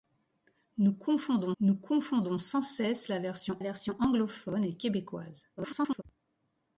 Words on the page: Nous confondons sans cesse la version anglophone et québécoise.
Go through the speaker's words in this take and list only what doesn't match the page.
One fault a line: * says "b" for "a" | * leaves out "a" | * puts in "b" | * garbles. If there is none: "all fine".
* puts in "nous confondons"
* puts in "version"
* garbles